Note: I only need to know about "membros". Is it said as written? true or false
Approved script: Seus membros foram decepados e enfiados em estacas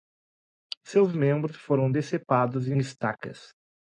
true